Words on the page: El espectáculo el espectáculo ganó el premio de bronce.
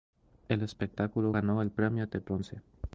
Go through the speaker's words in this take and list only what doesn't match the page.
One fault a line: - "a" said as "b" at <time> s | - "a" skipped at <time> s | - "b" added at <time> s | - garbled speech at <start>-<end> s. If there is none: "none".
- "el espectáculo" skipped at 1.4 s